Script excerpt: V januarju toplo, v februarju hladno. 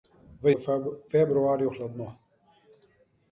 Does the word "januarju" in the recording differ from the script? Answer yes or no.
yes